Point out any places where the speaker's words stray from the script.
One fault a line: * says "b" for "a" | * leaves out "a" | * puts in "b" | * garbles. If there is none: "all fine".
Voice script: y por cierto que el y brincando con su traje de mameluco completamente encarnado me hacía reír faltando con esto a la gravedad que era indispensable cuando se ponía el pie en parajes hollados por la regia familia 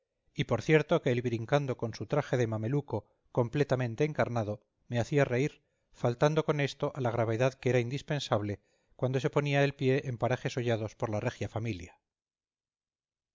all fine